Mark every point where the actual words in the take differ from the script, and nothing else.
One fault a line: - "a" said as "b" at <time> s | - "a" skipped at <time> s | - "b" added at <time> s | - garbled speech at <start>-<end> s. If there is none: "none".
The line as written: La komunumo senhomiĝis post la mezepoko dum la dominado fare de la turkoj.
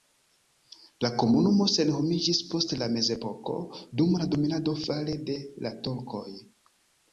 none